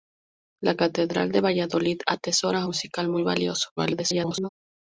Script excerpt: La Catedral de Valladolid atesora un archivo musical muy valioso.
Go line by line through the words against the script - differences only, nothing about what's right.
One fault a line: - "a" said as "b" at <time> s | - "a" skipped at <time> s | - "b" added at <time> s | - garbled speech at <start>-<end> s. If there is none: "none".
- "un archivo" skipped at 2.6 s
- garbled speech at 3.8-4.5 s